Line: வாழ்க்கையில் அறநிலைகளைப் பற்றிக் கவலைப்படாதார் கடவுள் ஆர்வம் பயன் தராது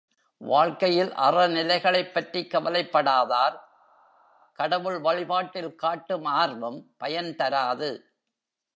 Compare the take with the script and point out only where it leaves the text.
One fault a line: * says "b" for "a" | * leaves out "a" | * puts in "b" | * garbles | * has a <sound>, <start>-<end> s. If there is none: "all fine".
* puts in "வழிபாட்டில் காட்டும்"